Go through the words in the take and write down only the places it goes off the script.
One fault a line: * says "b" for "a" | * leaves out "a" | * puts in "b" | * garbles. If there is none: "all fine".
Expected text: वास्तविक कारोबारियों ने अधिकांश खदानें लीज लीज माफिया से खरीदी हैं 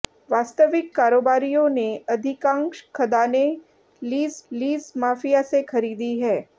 all fine